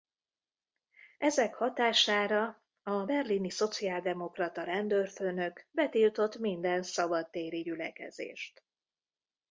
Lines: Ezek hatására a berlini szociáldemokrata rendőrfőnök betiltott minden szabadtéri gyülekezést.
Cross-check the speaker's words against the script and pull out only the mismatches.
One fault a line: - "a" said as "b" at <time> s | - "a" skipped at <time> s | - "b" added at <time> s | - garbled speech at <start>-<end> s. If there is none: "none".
none